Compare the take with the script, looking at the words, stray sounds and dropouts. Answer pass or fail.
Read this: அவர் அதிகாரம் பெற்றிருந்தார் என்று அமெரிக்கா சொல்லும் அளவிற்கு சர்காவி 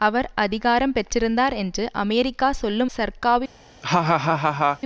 fail